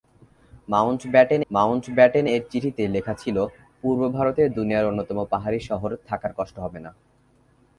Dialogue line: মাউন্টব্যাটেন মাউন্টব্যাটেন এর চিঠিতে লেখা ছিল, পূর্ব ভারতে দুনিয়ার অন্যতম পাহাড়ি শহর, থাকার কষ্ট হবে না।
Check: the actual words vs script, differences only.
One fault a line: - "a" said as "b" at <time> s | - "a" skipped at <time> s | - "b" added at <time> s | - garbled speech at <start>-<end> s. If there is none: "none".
none